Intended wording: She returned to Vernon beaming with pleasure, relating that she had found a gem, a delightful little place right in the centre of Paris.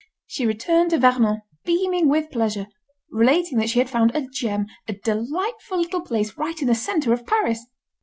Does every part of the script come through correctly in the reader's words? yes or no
yes